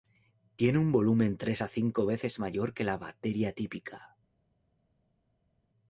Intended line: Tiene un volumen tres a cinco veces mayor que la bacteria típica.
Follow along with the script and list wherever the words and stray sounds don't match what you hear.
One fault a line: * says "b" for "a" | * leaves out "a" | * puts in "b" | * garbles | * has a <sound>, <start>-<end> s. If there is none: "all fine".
all fine